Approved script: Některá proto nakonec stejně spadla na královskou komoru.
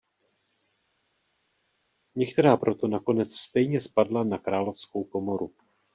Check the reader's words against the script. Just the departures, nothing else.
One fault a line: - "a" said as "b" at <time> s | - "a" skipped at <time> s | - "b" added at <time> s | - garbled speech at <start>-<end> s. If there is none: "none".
none